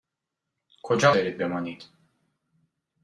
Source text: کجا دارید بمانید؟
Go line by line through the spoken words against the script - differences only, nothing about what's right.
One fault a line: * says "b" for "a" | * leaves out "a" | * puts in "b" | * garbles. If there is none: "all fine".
all fine